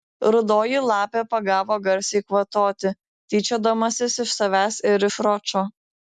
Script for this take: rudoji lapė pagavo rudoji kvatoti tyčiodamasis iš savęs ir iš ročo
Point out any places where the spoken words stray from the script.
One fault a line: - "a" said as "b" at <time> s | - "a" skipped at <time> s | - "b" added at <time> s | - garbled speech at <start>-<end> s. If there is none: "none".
- "rudoji" said as "garsiai" at 1.9 s